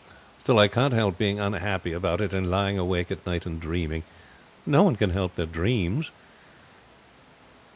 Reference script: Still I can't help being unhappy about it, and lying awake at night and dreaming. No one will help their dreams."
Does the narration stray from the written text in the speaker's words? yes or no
yes